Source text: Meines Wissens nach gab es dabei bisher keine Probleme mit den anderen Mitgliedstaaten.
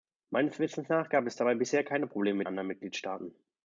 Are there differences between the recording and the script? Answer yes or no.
yes